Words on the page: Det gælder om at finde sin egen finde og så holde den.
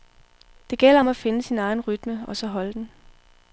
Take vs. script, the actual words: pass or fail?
fail